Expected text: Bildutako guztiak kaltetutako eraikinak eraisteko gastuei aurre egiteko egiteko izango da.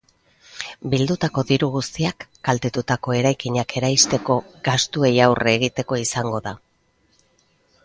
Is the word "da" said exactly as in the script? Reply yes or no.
yes